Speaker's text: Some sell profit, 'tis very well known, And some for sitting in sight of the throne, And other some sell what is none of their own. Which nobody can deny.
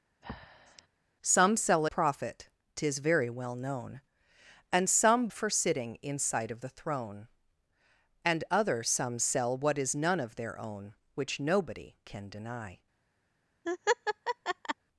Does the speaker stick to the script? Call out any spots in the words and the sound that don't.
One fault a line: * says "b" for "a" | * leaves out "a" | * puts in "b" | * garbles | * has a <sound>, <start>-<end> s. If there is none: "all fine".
* has a breath, 0.2-0.9 s
* has a laugh, 13.6-14.7 s